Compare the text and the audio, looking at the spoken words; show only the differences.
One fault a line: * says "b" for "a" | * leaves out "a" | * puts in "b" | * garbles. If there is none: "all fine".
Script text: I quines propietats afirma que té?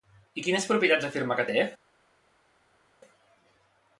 all fine